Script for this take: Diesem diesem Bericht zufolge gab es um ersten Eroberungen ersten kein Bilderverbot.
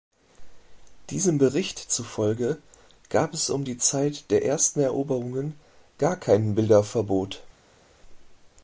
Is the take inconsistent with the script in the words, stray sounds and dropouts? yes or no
yes